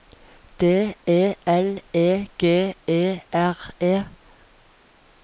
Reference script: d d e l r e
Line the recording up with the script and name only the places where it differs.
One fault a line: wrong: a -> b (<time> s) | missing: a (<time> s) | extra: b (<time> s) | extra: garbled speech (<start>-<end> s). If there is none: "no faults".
wrong: d -> e l (1.1 s)
wrong: l -> g e (2.4 s)